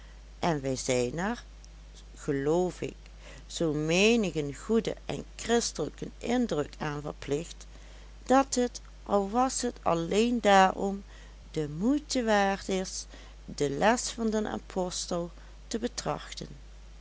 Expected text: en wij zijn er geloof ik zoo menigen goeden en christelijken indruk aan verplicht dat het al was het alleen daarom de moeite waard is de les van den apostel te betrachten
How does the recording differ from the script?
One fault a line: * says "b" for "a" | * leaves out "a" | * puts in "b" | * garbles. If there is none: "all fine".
all fine